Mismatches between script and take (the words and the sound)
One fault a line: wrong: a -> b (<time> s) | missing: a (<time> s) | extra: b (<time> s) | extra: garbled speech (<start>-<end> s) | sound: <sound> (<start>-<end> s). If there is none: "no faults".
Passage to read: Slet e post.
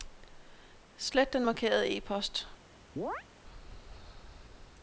extra: den markerede (1.3 s)
sound: chirp (3.0-3.2 s)